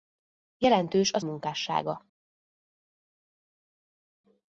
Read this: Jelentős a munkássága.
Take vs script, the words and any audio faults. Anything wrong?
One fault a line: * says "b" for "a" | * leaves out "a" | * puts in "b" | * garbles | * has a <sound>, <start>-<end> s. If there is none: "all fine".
all fine